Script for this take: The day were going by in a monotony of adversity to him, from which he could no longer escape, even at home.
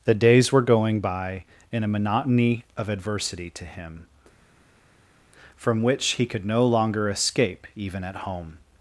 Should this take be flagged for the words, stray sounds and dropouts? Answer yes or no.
yes